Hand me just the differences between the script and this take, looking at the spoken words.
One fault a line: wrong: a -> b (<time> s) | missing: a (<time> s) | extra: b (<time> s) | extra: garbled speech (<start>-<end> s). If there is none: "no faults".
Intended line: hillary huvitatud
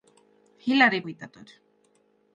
no faults